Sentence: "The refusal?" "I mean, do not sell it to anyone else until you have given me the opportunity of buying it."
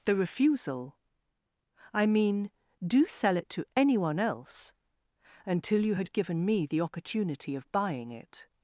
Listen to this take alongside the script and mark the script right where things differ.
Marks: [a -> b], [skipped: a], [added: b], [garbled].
"The refusal?" "I mean, do [skipped: not] sell it to anyone else until you [have -> had] given me the opportunity of buying it."